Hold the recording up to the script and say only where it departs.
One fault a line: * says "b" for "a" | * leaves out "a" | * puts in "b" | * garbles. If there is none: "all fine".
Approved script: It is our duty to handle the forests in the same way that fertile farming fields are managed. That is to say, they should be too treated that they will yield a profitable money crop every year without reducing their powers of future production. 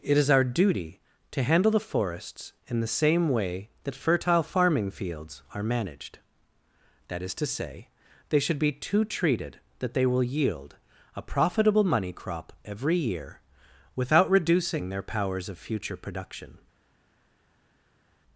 all fine